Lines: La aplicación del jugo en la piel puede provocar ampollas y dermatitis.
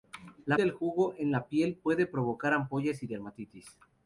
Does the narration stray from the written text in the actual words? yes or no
yes